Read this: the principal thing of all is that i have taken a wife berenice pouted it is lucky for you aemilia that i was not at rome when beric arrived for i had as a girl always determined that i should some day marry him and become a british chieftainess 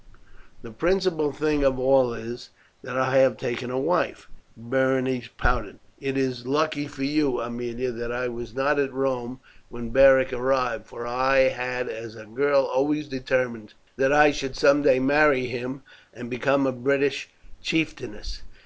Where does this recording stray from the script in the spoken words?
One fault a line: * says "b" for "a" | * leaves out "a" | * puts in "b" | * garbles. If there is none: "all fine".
all fine